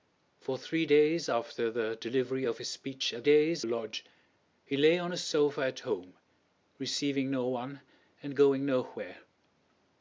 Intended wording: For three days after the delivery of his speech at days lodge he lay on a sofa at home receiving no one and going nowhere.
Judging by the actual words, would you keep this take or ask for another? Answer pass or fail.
pass